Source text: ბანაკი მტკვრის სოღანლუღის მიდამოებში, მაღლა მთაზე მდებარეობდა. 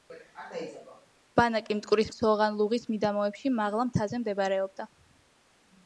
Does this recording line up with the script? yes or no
yes